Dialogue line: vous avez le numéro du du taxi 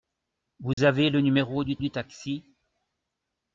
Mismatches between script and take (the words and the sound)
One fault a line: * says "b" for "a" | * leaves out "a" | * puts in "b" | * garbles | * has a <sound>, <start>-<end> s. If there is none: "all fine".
* has a dropout, 0.7-0.8 s